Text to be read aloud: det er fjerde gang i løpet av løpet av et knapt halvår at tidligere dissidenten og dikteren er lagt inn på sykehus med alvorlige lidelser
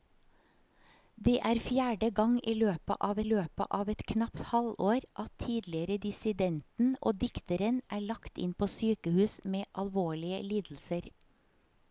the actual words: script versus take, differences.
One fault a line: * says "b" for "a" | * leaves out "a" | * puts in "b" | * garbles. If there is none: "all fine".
all fine